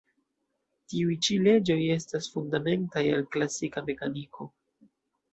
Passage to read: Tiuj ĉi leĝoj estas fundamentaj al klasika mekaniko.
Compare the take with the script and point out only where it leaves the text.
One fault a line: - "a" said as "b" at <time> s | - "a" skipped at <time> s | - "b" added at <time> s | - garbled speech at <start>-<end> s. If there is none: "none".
none